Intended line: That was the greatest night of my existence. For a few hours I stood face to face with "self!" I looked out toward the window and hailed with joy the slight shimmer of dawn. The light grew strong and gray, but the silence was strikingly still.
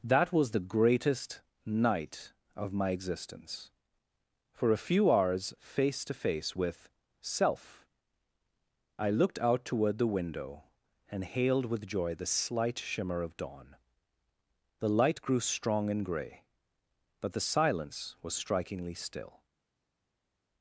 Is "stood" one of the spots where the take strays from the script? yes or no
yes